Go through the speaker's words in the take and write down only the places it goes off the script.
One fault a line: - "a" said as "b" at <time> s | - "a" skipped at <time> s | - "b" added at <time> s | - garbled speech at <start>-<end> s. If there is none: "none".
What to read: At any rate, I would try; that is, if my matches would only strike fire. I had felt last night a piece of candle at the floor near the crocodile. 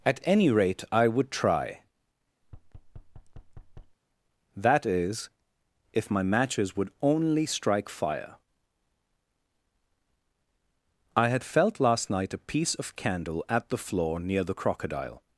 none